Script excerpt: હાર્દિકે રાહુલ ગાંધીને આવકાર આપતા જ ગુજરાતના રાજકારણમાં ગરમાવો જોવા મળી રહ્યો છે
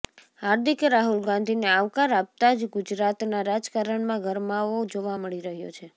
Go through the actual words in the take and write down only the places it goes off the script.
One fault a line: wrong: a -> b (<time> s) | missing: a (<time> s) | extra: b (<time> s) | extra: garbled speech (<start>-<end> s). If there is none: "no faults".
no faults